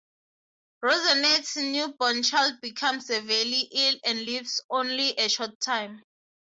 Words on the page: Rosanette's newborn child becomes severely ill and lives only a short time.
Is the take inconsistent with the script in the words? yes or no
no